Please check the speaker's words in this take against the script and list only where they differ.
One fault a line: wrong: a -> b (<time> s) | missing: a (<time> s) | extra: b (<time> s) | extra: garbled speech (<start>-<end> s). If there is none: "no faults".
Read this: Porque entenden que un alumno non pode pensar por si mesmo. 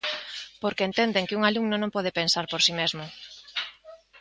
no faults